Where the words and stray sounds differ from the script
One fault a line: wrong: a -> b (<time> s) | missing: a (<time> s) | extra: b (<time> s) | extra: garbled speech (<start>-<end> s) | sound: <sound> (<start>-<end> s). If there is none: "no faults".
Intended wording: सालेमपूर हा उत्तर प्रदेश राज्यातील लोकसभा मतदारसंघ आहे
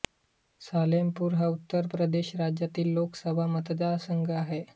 no faults